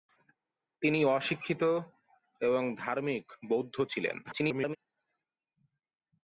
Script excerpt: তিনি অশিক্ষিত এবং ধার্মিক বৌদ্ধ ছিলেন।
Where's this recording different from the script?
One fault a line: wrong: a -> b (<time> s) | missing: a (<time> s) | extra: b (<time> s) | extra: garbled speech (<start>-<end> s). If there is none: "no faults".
extra: garbled speech (4.2-4.8 s)